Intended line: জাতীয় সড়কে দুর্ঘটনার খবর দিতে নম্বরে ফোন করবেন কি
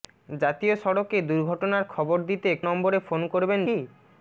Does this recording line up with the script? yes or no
yes